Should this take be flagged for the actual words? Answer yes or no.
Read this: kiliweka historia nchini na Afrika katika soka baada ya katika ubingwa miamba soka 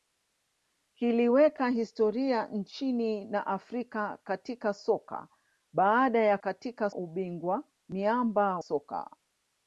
no